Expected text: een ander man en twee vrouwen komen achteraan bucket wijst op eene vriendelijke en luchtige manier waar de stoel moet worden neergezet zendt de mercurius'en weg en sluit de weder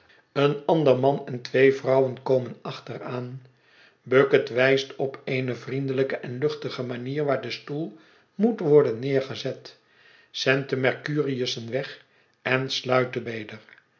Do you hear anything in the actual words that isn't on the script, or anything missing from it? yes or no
no